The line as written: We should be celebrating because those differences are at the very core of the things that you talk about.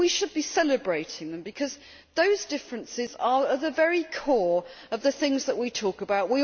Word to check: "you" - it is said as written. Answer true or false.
false